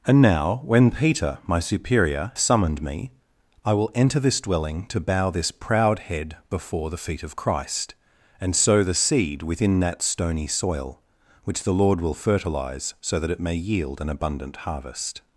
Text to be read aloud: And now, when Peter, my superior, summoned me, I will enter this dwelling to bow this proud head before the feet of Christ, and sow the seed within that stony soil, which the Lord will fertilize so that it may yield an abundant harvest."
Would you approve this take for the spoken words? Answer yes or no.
yes